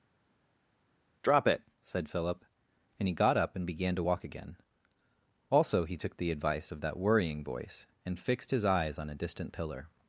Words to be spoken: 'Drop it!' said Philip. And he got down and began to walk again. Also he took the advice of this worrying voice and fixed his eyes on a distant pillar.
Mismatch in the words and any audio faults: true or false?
true